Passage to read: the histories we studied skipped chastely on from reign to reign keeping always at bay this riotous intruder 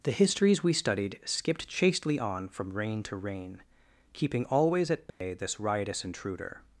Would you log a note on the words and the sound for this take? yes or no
yes